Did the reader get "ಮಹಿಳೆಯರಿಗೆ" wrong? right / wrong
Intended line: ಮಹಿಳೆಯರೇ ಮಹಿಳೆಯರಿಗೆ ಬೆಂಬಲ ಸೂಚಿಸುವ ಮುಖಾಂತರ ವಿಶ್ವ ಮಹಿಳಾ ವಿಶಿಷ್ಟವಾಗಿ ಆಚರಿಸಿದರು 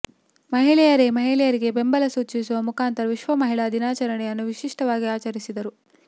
right